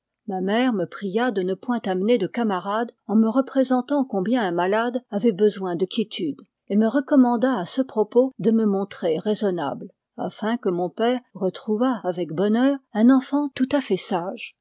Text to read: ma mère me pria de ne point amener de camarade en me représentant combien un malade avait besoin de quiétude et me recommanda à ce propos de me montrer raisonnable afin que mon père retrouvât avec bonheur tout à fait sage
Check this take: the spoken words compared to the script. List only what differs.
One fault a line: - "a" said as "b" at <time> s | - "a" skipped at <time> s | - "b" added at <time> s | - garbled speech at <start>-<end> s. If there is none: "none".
- "un enfant" added at 12.9 s